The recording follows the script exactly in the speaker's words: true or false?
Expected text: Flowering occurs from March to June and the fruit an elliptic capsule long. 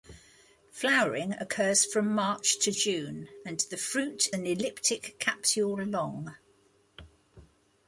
true